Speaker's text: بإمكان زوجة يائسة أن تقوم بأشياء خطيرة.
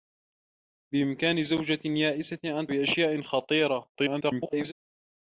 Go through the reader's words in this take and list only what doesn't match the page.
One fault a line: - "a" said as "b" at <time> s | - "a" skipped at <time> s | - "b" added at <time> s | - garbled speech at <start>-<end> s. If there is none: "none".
- "تقوم" skipped at 2.7 s
- garbled speech at 3.9-4.7 s